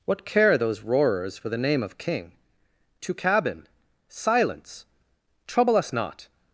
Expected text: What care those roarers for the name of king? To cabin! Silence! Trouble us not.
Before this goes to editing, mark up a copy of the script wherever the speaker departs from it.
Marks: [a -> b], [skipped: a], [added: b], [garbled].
What care those roarers for the name of king? To cabin! Silence! Trouble us not.